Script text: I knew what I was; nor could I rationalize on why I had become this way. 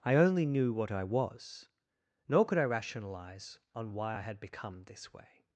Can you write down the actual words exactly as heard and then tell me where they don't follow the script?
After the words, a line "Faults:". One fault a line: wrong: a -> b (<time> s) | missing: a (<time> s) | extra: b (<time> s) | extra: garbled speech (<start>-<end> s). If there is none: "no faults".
I only knew what I was; nor could I rationalize on why I had become this way.
Faults:
extra: only (0.1 s)